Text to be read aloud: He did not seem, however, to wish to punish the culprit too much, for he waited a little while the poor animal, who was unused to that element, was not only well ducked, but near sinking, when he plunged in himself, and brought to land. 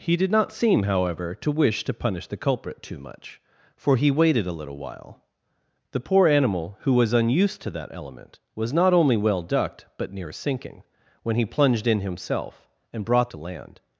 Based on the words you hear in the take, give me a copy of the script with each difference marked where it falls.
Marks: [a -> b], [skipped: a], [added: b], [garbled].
He did not seem, however, to wish to punish the culprit too much, for he waited a little while the poor animal, who was unused to that element, was not only well ducked, but near sinking, when he plunged in himself, and brought to land.